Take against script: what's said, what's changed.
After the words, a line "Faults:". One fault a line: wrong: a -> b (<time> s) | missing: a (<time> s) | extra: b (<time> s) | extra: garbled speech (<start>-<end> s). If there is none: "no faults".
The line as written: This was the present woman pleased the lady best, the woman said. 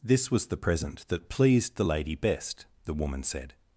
This was the present that pleased the lady best, the woman said.
Faults:
wrong: woman -> that (1.1 s)